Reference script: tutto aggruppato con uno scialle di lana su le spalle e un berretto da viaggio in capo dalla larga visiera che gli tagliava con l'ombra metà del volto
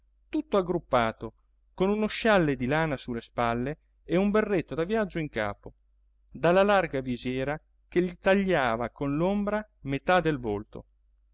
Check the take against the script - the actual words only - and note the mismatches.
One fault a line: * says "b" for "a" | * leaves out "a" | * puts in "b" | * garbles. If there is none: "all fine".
all fine